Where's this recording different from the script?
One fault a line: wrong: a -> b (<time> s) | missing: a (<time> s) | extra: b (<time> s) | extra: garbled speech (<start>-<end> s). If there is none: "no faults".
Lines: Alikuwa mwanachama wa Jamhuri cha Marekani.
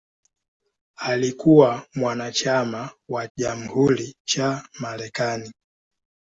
no faults